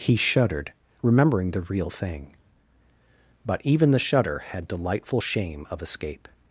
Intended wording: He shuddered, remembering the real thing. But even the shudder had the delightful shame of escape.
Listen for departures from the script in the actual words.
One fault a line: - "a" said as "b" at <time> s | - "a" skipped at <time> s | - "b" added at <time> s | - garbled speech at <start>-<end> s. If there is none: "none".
- "the" skipped at 4.6 s